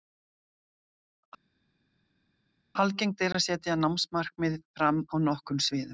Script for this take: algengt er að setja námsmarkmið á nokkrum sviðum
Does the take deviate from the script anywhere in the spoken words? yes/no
yes